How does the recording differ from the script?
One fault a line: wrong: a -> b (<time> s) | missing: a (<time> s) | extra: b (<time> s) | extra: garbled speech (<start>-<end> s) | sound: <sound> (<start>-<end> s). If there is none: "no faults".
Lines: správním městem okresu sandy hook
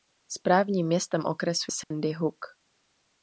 sound: dropout (1.8-1.9 s)